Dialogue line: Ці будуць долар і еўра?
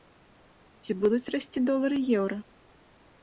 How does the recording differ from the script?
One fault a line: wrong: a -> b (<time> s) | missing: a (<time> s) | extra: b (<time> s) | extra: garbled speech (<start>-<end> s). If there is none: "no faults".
extra: расці (1.4 s)